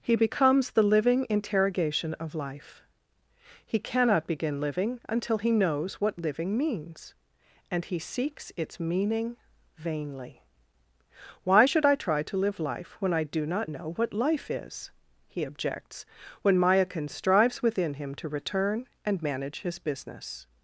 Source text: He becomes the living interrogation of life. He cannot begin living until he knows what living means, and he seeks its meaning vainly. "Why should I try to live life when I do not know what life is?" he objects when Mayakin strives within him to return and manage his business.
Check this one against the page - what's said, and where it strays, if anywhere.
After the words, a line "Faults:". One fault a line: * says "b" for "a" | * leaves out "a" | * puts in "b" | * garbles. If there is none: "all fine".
He becomes the living interrogation of life. He cannot begin living until he knows what living means, and he seeks its meaning vainly. "Why should I try to live life when I do not know what life is?" he objects when Mayakin strives within him to return and manage his business.
Faults:
all fine